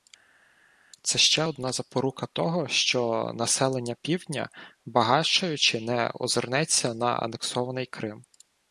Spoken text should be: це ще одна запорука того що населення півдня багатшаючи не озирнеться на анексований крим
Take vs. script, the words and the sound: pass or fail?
pass